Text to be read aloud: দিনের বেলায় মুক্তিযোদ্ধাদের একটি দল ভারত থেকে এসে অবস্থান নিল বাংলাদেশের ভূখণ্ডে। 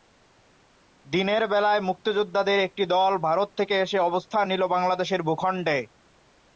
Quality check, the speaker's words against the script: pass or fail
pass